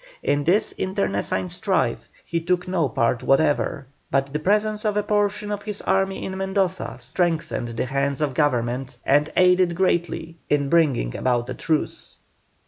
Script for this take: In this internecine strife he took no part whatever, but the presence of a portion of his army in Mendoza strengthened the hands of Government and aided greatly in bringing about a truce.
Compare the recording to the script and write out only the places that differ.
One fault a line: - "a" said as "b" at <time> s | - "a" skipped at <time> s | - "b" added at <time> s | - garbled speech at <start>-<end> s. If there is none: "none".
none